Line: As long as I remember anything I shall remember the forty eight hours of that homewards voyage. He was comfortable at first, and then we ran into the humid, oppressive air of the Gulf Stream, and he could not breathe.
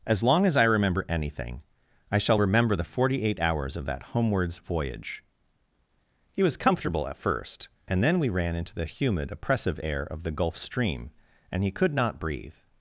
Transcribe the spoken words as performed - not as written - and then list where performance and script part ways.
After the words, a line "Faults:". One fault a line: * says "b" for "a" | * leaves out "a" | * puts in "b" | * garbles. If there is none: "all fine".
As long as I remember anything I shall remember the forty eight hours of that homewards voyage. He was comfortable at first, and then we ran into the humid, oppressive air of the Gulf Stream, and he could not breathe.
Faults:
all fine